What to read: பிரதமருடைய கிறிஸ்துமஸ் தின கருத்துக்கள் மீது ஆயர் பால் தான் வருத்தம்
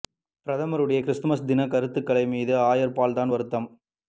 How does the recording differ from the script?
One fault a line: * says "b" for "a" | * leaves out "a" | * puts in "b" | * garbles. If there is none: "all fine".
all fine